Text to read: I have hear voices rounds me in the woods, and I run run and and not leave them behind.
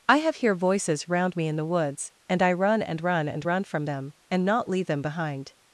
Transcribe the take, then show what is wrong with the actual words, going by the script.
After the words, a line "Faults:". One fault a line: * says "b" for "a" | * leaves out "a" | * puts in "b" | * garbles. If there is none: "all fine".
I have hear voices round me in the woods, and I run and run and run from them, and not leave them behind.
Faults:
* says "round" for "rounds"
* puts in "and"
* puts in "run from them"